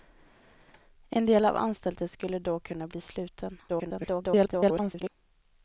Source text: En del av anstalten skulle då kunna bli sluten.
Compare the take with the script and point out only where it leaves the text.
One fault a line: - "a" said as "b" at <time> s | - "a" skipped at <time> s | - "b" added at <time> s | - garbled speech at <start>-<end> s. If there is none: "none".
- garbled speech at 3.7-5.1 s